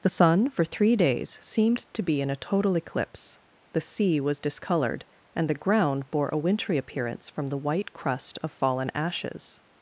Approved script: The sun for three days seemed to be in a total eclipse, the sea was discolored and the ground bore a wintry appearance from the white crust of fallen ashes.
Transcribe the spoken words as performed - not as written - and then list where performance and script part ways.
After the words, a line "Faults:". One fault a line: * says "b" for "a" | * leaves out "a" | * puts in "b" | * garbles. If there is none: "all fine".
The sun for three days seemed to be in a total eclipse, the sea was discolored and the ground bore a wintry appearance from the white crust of fallen ashes.
Faults:
all fine